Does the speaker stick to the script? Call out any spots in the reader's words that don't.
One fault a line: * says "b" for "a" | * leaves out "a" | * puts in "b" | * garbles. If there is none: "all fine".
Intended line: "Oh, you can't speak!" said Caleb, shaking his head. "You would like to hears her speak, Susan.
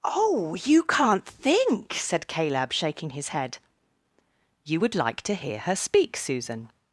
* says "think" for "speak"
* says "hear" for "hears"